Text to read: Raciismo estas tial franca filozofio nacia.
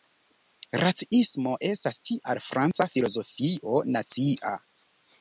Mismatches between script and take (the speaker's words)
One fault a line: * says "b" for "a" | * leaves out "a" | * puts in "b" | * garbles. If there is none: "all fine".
all fine